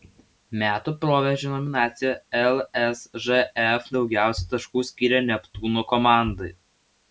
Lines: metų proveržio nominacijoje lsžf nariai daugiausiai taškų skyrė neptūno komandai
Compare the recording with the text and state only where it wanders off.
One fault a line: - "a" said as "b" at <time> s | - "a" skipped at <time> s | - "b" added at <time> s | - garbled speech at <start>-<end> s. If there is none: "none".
- "nariai" skipped at 3.9 s